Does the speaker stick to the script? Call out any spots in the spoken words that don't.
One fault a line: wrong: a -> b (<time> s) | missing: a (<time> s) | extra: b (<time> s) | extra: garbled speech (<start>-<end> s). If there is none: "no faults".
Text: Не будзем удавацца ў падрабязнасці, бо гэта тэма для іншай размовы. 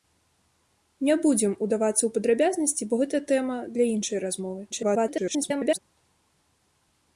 extra: garbled speech (4.7-5.8 s)